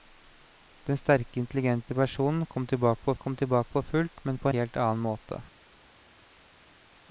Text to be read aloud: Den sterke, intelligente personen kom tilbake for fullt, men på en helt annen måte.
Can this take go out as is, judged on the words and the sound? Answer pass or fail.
fail